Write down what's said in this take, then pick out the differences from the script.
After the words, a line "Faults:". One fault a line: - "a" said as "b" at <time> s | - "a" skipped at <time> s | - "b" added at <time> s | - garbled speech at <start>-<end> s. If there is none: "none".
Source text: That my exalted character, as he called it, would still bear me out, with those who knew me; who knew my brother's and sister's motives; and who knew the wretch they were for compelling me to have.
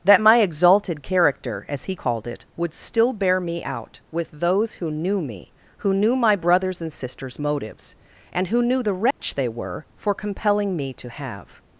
That my exalted character, as he called it, would still bear me out, with those who knew me; who knew my brother's and sister's motives; and who knew the wretch they were for compelling me to have.
Faults:
none